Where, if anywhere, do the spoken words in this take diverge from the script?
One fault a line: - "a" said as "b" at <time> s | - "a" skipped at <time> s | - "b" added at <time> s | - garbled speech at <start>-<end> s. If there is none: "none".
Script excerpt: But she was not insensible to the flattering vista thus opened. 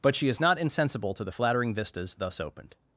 - "was" said as "is" at 0.3 s
- "vista" said as "vistas" at 1.7 s